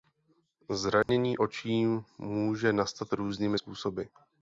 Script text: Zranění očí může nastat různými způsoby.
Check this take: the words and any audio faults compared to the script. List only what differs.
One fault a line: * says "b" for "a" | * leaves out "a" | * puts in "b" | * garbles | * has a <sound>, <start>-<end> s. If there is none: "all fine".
* has a dropout, 1.0-1.1 s